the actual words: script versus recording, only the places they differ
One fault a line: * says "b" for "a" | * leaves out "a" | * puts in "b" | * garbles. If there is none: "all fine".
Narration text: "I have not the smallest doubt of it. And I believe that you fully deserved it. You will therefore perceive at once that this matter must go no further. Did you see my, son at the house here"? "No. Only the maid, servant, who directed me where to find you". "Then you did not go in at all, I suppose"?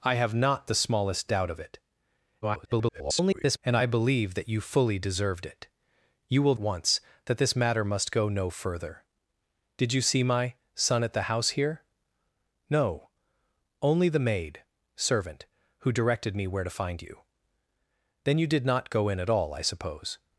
* garbles
* leaves out "therefore perceive at"